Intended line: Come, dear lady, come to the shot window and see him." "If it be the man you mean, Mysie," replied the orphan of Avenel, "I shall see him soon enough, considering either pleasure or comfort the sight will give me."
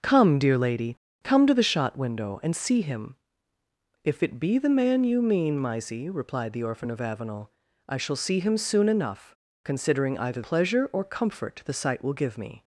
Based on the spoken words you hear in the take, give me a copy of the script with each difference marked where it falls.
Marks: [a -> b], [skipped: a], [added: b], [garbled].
Come, dear lady, come to the shot window and see him." "If it be the man you mean, Mysie," replied the orphan of Avenel, "I shall see him soon enough, considering either pleasure or comfort the sight will give me."